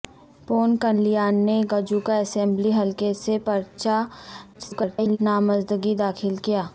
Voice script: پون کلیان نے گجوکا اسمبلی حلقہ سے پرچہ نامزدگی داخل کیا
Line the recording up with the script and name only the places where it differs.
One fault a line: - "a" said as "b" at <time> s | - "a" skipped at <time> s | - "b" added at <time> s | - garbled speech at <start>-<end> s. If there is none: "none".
- garbled speech at 4.5-5.2 s